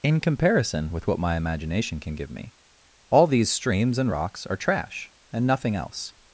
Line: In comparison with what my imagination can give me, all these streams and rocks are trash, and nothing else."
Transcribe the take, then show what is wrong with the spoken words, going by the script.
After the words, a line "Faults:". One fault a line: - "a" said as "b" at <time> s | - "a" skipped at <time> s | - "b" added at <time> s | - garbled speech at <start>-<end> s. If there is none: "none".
In comparison with what my imagination can give me, all these streams and rocks are trash, and nothing else."
Faults:
none